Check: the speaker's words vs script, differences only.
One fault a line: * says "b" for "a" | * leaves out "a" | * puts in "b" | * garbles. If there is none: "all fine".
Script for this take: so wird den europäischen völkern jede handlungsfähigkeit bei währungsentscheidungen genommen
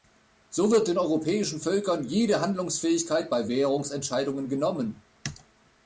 all fine